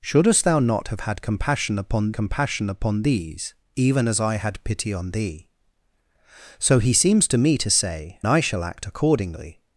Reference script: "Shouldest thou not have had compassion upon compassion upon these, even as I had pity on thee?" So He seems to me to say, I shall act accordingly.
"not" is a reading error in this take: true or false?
false